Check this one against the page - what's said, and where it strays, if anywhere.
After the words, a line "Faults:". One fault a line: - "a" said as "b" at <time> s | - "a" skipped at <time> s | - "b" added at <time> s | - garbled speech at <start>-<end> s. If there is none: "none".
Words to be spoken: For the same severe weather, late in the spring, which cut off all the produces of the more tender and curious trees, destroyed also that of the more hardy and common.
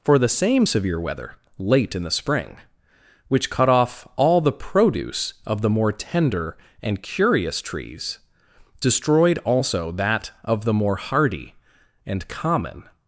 For the same severe weather, late in the spring, which cut off all the produce of the more tender and curious trees, destroyed also that of the more hardy and common.
Faults:
- "produces" said as "produce" at 4.5 s